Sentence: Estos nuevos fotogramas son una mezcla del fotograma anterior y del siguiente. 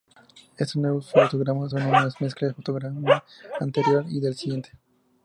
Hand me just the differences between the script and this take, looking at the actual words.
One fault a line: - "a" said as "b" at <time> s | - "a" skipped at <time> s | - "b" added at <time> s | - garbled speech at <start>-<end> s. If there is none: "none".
none